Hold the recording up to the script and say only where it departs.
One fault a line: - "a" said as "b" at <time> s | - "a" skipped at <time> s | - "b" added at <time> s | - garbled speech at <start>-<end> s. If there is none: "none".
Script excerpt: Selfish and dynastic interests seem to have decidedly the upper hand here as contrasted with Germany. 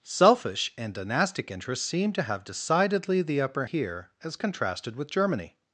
- "hand" skipped at 3.6 s